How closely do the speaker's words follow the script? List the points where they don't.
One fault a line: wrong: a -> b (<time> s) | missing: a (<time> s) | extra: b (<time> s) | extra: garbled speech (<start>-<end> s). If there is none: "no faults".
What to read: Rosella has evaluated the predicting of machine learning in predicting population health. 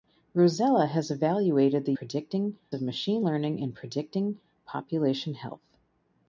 no faults